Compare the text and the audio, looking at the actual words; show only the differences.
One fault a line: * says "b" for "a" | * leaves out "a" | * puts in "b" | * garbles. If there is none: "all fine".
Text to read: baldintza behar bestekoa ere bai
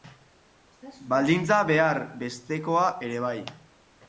all fine